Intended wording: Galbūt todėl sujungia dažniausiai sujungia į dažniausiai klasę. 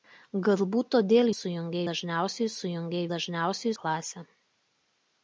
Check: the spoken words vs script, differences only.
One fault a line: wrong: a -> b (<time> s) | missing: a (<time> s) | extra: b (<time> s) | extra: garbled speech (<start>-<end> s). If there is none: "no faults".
no faults